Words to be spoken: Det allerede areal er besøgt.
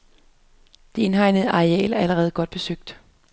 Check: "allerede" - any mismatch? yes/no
yes